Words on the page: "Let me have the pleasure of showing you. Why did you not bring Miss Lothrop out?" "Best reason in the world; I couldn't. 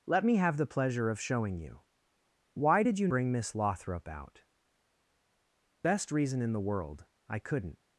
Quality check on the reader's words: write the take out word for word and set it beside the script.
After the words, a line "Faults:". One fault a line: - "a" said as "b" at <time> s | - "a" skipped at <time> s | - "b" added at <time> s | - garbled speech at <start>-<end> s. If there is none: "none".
"Let me have the pleasure of showing you. Why did you bring Miss Lothrop out?" "Best reason in the world; I couldn't.
Faults:
- "not" skipped at 3.1 s